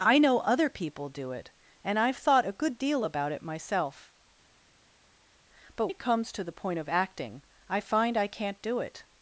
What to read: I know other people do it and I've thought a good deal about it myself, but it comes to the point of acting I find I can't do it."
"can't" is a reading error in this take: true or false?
false